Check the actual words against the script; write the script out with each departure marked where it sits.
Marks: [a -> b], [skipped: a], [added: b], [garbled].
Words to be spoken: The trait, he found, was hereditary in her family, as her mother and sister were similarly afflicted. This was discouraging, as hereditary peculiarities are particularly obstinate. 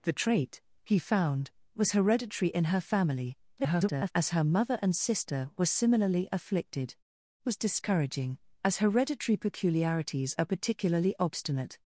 The trait, he found, was hereditary in her family, [garbled] as her mother and sister were similarly afflicted. [skipped: This] was discouraging, as hereditary peculiarities are particularly obstinate.